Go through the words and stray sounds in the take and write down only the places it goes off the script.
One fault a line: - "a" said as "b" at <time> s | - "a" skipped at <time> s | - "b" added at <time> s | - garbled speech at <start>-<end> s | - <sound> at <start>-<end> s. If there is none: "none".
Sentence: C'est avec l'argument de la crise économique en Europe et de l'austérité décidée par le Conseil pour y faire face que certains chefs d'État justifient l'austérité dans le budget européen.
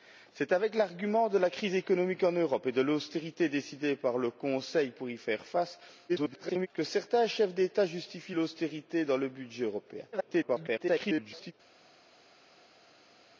- garbled speech at 6.1-6.7 s
- garbled speech at 10.1-11.5 s